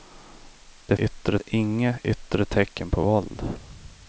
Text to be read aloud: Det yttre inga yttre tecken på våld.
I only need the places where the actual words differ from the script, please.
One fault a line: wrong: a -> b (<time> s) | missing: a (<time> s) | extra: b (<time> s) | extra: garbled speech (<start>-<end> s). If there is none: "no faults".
no faults